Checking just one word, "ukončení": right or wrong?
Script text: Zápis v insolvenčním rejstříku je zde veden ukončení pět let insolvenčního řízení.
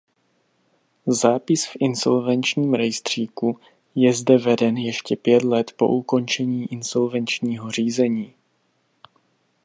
wrong